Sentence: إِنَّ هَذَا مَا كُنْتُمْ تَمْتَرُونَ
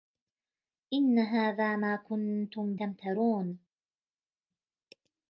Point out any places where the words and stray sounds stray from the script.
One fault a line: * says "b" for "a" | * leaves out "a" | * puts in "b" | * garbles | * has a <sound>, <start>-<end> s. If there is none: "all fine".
all fine